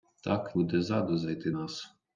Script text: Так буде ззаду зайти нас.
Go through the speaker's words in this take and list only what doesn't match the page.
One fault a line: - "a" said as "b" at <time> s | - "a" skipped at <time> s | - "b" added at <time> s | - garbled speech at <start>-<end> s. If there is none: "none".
none